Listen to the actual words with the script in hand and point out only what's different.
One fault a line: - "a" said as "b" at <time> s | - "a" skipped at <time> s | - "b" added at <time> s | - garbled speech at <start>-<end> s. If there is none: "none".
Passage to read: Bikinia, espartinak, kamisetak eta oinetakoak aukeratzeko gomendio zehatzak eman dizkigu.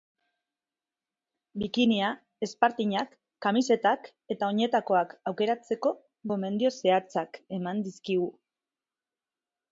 none